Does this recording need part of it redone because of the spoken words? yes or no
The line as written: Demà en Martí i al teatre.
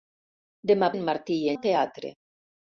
no